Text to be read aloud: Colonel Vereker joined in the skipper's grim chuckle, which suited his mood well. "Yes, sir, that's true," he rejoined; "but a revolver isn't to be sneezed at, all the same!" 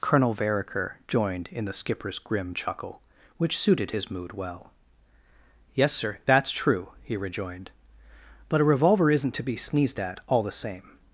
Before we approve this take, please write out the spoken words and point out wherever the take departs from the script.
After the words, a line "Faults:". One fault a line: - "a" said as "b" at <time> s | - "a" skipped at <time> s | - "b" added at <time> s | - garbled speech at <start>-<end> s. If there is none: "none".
Colonel Vereker joined in the skipper's grim chuckle, which suited his mood well. "Yes, sir, that's true," he rejoined; "but a revolver isn't to be sneezed at, all the same!"
Faults:
none